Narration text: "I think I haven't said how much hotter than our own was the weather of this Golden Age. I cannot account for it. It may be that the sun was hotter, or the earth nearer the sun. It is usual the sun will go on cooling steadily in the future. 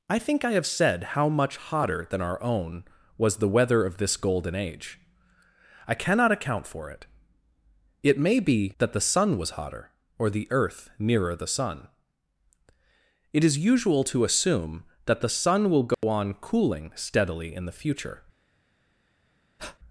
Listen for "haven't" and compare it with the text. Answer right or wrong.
wrong